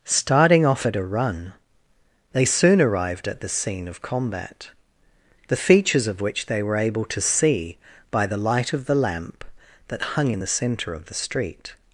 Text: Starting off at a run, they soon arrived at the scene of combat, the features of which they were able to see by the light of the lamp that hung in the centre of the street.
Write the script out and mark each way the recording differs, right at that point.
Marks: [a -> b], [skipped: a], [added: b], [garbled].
Starting off at a run, they soon arrived at the scene of combat, the features of which they were able to see by the light of the lamp that hung in the centre of the street.